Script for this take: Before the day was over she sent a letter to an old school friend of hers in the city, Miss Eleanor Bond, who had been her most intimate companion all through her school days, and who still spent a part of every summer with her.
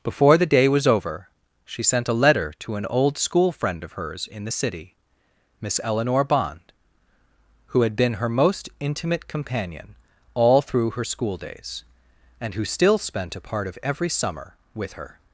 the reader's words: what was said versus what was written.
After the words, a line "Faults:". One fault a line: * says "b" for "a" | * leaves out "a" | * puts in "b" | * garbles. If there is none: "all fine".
Before the day was over she sent a letter to an old school friend of hers in the city, Miss Eleanor Bond, who had been her most intimate companion all through her school days, and who still spent a part of every summer with her.
Faults:
all fine